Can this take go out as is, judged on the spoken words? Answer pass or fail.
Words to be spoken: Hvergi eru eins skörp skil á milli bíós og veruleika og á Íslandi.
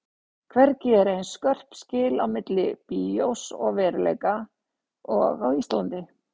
pass